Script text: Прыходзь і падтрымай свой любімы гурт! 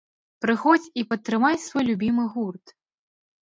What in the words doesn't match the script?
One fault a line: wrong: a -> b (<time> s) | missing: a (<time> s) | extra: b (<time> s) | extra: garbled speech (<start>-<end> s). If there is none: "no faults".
no faults